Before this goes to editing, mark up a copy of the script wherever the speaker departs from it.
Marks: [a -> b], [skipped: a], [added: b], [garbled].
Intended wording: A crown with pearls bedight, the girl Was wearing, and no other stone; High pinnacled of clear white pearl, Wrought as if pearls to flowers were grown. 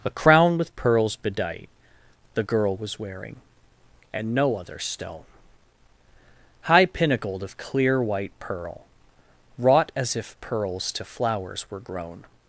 A crown with pearls bedight, the girl Was wearing, and no other stone; High pinnacled of clear white pearl, Wrought as if pearls to flowers were grown.